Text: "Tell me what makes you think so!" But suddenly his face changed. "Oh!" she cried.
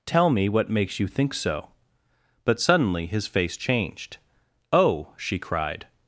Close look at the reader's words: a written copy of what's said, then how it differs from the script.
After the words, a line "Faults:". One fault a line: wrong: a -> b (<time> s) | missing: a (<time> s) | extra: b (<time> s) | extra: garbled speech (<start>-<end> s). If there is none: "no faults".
"Tell me what makes you think so!" But suddenly his face changed. "Oh!" she cried.
Faults:
no faults